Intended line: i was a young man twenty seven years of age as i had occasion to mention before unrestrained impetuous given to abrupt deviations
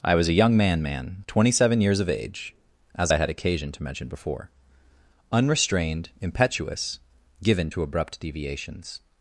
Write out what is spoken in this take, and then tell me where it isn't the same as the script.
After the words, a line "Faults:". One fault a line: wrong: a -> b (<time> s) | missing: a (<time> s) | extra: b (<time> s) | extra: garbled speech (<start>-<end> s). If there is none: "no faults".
i was a young man man twenty seven years of age as i had occasion to mention before unrestrained impetuous given to abrupt deviations
Faults:
extra: man (0.8 s)